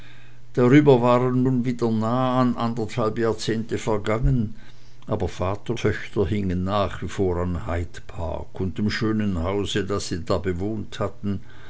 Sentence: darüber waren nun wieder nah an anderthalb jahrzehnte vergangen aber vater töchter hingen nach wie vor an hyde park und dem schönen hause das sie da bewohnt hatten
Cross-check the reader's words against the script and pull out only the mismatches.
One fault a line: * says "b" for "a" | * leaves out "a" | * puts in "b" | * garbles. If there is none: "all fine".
all fine